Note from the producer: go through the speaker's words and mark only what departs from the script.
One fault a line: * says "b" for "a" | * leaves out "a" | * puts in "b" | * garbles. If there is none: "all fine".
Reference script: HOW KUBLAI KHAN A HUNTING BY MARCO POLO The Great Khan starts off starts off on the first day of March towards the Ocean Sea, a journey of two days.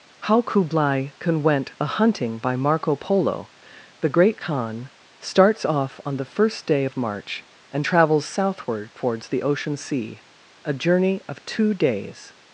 * puts in "WENT"
* leaves out "starts off"
* puts in "and travels southward"